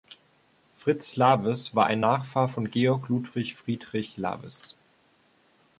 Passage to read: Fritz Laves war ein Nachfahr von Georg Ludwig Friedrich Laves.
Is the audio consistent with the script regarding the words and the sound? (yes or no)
yes